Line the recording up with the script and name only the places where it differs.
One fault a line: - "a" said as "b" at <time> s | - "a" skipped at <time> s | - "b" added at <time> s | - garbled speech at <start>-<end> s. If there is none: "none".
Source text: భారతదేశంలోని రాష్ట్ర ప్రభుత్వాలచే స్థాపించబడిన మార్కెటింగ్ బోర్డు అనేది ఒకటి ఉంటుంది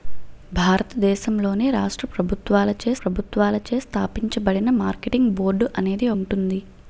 - "ప్రభుత్వాలచే" added at 3.0 s
- "ఒకటి" skipped at 6.1 s